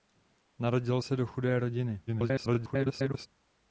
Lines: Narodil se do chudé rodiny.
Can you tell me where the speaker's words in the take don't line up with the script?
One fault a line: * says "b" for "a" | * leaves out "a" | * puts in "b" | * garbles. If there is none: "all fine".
* garbles